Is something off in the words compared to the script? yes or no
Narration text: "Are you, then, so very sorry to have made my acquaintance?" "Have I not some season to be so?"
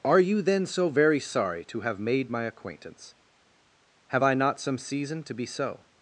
no